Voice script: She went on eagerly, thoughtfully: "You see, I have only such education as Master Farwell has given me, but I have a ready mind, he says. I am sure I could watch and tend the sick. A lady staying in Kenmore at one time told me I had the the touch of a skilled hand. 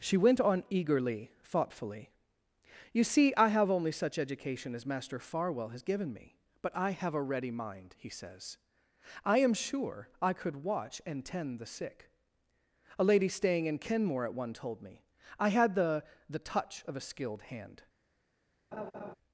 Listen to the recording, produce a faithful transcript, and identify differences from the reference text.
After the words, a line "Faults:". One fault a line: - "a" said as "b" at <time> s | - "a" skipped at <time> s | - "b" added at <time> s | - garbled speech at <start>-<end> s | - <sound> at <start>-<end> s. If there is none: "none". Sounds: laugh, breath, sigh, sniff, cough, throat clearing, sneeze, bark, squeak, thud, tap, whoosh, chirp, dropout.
She went on eagerly, thoughtfully: "You see, I have only such education as Master Farwell has given me, but I have a ready mind, he says. I am sure I could watch and tend the sick. A lady staying in Kenmore at one told me I had the the touch of a skilled hand.
Faults:
- "time" skipped at 14.6 s
- laugh at 18.7-19.1 s